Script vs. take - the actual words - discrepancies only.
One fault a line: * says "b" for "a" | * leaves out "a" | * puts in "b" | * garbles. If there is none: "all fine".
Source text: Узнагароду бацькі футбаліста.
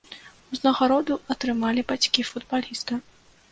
* puts in "атрымалі"